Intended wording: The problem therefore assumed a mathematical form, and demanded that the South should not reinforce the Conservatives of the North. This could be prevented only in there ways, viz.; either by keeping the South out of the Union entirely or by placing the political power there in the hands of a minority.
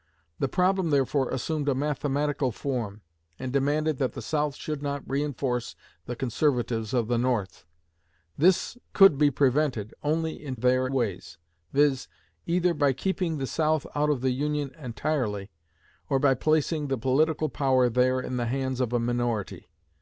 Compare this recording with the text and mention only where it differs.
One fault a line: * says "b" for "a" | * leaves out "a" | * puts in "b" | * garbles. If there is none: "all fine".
all fine